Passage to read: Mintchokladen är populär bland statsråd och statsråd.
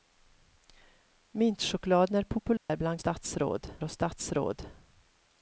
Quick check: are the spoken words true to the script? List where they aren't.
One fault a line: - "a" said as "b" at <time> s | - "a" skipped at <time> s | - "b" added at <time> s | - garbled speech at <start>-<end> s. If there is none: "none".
none